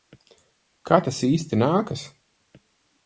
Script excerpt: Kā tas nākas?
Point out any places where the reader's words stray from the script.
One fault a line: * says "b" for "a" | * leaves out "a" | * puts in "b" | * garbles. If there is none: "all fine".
* puts in "īsti"